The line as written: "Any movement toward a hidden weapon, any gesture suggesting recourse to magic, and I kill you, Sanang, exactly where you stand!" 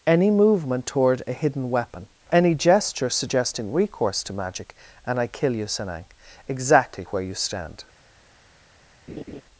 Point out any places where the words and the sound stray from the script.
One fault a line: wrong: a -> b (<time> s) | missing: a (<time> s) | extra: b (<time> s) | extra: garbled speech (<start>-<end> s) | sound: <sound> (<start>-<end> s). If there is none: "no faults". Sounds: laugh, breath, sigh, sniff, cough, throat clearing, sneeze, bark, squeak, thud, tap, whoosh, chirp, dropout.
sound: laugh (9.1-9.4 s)